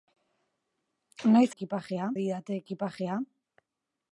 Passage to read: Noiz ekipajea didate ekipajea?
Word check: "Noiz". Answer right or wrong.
right